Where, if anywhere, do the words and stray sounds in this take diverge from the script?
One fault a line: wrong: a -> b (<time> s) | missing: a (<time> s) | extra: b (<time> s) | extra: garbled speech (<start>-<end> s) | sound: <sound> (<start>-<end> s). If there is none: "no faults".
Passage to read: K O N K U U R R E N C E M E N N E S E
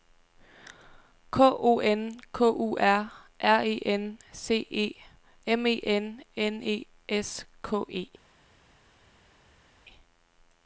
missing: U (2.8 s)
extra: K (7.6 s)